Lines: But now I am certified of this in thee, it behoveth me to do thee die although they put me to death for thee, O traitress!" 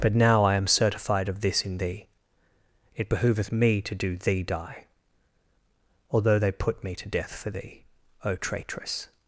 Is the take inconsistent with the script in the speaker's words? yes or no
no